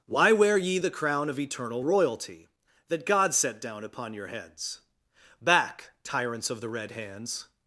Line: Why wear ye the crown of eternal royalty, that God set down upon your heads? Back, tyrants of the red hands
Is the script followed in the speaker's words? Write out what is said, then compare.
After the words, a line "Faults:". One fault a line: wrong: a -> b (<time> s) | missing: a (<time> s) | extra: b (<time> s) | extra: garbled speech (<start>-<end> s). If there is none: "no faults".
Why wear ye the crown of eternal royalty, that God set down upon your heads? Back, tyrants of the red hands
Faults:
no faults